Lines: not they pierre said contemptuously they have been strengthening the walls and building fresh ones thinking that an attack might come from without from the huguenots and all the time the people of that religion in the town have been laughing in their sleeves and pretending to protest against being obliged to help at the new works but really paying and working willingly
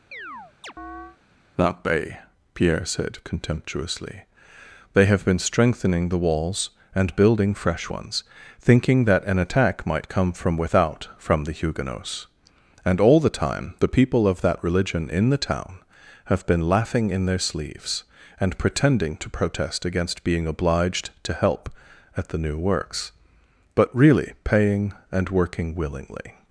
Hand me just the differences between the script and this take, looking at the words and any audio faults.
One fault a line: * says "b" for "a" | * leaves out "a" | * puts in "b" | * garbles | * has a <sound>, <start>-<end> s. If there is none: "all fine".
* has a chirp, 0.1-1.2 s
* says "that bay" for "not they"